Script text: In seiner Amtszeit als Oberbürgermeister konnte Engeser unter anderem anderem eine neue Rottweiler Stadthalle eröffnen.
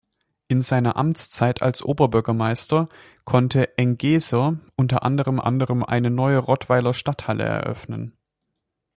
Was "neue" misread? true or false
false